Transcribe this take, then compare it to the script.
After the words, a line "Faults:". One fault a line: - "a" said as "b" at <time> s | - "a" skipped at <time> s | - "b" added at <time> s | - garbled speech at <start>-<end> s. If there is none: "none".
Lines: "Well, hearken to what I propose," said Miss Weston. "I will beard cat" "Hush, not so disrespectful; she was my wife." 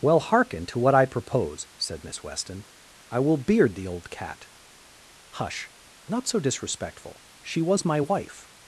"Well, hearken to what I propose," said Miss Weston. "I will beard the old cat" "Hush, not so disrespectful; she was my wife."
Faults:
- "the old" added at 3.8 s